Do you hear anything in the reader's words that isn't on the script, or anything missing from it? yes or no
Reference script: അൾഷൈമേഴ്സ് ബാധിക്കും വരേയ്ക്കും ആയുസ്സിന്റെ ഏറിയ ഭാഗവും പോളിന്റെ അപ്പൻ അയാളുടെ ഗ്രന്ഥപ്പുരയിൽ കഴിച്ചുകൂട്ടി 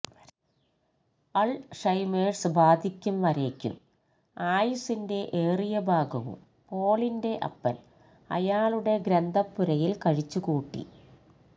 no